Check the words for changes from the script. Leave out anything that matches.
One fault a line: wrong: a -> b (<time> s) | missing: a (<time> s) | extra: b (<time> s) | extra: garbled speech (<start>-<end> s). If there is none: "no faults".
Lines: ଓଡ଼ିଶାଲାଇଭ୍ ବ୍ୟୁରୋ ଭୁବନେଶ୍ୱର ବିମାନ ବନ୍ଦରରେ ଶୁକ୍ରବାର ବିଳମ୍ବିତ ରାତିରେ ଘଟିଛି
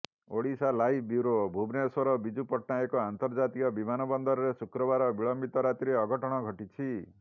extra: ବିଜୁ ପଟ୍ଟନାୟକ ଅନ୍ତର୍ଜାତୀୟ (2.2 s)
extra: ଅଘଟଣ (6.0 s)